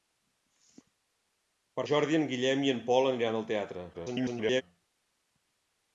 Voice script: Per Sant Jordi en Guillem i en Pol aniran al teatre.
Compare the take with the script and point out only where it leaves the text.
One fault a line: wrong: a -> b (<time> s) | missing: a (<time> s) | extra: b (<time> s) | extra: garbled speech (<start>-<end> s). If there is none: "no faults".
missing: Sant (1.9 s)
extra: garbled speech (3.9-4.6 s)